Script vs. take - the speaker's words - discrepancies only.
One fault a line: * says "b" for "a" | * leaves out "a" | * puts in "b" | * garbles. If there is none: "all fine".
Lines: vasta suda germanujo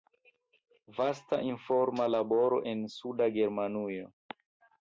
* puts in "informa laboro en"